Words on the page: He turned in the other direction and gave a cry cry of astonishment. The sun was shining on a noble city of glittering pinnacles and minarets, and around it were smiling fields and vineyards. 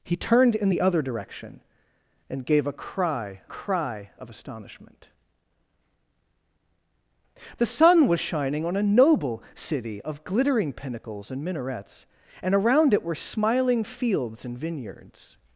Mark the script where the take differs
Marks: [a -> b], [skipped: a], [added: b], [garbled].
He turned in the other direction and gave a cry cry of astonishment. The sun was shining on a noble city of glittering pinnacles and minarets, and around it were smiling fields and vineyards.